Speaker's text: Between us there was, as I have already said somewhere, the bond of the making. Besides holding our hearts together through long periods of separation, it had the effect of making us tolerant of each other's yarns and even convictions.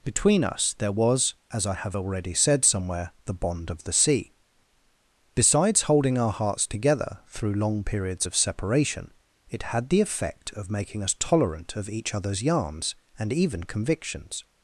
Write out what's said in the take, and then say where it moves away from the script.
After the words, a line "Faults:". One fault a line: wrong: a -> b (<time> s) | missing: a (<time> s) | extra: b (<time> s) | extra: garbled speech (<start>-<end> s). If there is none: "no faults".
Between us there was, as I have already said somewhere, the bond of the sea. Besides holding our hearts together through long periods of separation, it had the effect of making us tolerant of each other's yarns and even convictions.
Faults:
wrong: making -> sea (3.9 s)